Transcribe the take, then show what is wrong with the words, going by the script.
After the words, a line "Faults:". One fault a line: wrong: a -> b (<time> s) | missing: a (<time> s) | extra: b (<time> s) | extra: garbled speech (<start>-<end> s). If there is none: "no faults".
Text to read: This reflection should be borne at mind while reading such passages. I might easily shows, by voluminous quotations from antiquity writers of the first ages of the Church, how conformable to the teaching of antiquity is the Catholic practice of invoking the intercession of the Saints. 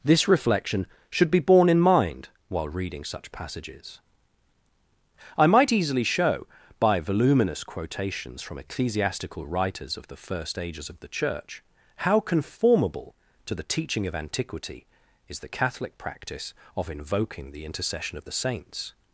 This reflection should be borne in mind while reading such passages. I might easily show, by voluminous quotations from ecclesiastical writers of the first ages of the Church, how conformable to the teaching of antiquity is the Catholic practice of invoking the intercession of the Saints.
Faults:
wrong: at -> in (1.7 s)
wrong: shows -> show (6.0 s)
wrong: antiquity -> ecclesiastical (8.6 s)